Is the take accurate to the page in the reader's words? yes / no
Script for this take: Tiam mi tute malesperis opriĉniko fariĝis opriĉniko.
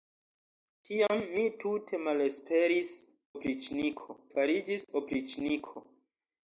yes